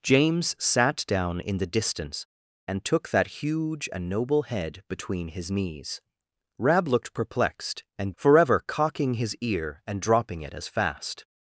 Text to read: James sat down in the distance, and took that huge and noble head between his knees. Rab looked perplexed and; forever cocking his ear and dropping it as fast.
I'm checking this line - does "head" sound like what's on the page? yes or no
yes